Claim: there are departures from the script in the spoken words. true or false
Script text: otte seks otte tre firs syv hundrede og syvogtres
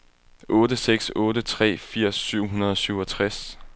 false